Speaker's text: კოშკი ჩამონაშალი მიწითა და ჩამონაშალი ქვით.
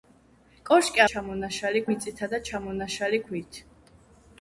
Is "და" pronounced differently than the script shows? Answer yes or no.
no